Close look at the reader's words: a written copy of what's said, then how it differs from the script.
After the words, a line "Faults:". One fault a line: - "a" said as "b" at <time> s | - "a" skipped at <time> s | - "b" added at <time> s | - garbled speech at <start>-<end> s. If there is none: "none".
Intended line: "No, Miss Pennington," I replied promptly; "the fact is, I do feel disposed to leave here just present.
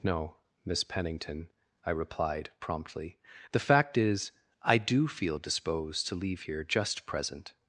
"No, Miss Pennington," I replied promptly; "the fact is, I do feel disposed to leave here just present.
Faults:
none